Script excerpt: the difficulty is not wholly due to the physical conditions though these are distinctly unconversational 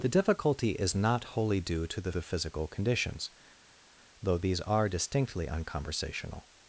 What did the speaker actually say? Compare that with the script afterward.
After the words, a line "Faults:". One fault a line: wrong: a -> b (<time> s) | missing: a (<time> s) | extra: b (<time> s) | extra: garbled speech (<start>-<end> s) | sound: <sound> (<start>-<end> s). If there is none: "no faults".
the difficulty is not wholly due to the the physical conditions though these are distinctly unconversational
Faults:
extra: the (2.1 s)